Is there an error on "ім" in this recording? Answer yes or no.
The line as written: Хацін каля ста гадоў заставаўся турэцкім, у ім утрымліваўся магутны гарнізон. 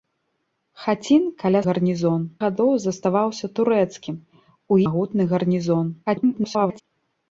yes